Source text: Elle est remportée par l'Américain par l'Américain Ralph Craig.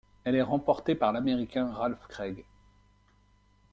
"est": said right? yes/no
yes